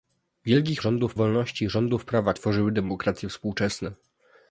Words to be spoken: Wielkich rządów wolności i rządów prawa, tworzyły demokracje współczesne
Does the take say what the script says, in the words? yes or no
yes